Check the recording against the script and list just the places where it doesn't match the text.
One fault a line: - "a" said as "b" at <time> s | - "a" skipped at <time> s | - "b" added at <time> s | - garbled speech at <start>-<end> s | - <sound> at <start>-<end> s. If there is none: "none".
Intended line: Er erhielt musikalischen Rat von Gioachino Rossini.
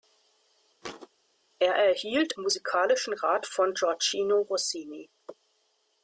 - thud at 0.8-1.1 s